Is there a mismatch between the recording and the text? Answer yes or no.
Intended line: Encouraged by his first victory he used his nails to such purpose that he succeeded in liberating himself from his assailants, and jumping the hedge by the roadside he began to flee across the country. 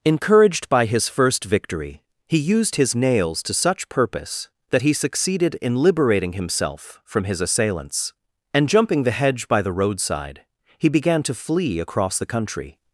no